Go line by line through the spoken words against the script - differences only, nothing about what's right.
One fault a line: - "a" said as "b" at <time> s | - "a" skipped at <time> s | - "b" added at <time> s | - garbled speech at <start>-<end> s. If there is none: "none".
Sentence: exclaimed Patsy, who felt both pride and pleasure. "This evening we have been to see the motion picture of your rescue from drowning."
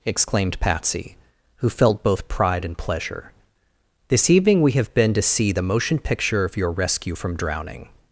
none